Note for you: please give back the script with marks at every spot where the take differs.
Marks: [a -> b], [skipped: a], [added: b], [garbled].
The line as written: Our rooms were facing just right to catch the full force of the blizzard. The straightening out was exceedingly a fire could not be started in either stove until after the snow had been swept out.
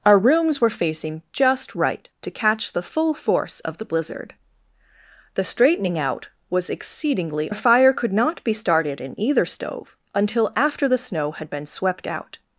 Our rooms were facing just right to catch the full force of the blizzard. The straightening out was exceedingly a fire could not be started in either stove until after the snow had been swept out.